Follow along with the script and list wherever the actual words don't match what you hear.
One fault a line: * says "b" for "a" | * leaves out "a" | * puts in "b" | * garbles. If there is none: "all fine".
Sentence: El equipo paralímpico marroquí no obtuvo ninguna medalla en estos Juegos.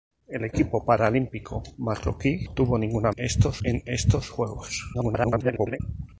* leaves out "no"
* says "estos" for "medalla"
* garbles